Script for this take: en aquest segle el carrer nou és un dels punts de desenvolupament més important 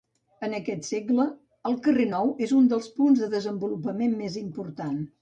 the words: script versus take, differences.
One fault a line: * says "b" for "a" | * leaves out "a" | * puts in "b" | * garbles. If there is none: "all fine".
all fine